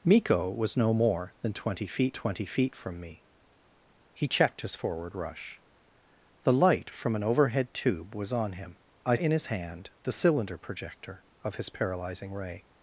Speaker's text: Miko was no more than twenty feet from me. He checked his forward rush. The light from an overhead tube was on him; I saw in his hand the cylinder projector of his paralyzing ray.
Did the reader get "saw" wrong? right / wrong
wrong